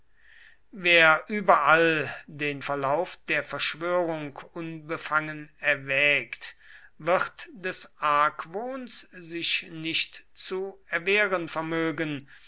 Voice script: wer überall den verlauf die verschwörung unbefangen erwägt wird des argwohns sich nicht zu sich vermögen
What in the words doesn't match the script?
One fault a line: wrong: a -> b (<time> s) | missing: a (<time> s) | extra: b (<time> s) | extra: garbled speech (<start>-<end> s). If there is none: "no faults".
wrong: die -> der (3.3 s)
wrong: sich -> erwehren (10.9 s)